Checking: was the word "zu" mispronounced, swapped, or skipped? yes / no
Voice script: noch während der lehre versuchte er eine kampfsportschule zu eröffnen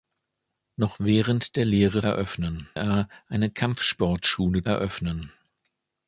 yes